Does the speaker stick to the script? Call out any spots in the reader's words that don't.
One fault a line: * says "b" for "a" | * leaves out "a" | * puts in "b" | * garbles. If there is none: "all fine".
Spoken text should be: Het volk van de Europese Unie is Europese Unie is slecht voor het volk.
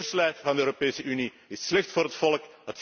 * says "keurslijf" for "volk"
* leaves out "Europese Unie is"